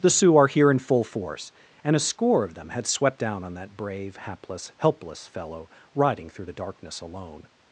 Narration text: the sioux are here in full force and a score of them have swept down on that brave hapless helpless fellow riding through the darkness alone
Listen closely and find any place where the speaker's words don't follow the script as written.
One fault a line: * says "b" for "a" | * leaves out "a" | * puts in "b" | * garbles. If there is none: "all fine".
* says "had" for "have"